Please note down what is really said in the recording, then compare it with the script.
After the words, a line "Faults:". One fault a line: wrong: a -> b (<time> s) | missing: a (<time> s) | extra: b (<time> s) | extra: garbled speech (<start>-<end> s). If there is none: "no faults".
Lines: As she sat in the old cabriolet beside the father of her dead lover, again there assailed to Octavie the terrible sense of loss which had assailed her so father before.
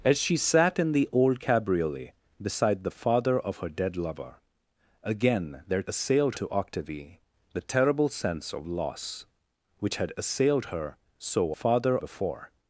As she sat in the old cabriolet beside the father of her dead lover, again there assailed to Octavie the terrible sense of loss which had assailed her so father before.
Faults:
no faults